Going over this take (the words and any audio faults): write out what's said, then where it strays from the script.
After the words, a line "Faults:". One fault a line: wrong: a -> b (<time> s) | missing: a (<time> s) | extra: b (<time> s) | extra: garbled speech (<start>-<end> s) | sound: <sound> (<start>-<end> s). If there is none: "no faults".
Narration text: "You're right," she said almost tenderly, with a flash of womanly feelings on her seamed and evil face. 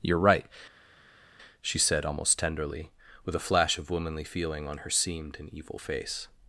"You're right," she said almost tenderly, with a flash of womanly feeling on her seamed and evil face.
Faults:
wrong: feelings -> feeling (4.2 s)